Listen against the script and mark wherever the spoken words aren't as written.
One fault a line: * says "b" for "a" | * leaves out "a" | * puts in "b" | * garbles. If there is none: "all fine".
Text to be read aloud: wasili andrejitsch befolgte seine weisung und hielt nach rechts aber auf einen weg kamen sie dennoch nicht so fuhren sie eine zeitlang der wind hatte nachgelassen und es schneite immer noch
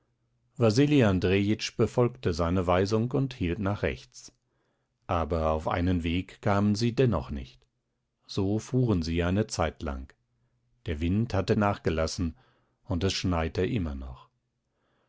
all fine